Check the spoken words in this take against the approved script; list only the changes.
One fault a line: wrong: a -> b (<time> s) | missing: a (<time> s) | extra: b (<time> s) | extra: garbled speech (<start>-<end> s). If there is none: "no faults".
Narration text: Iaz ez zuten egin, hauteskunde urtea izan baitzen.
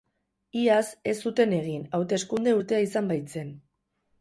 no faults